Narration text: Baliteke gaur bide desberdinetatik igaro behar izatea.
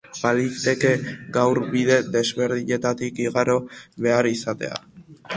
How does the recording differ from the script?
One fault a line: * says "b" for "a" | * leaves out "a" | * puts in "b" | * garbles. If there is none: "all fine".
all fine